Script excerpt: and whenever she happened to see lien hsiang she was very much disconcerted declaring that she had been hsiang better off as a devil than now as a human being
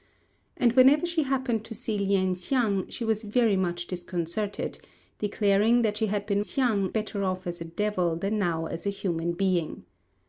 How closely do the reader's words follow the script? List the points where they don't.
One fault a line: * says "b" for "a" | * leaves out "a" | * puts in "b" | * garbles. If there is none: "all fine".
all fine